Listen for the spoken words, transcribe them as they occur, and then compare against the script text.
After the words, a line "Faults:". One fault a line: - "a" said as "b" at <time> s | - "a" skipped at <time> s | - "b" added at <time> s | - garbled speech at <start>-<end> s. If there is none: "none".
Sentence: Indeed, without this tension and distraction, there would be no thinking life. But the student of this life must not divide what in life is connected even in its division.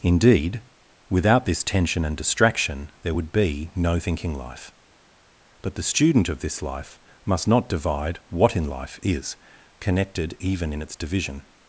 Indeed, without this tension and distraction, there would be no thinking life. But the student of this life must not divide what in life is connected even in its division.
Faults:
none